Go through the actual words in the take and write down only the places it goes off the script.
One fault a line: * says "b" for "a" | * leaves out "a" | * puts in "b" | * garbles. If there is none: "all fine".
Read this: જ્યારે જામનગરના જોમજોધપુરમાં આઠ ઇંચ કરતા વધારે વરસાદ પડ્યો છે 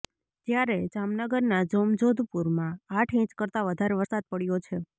all fine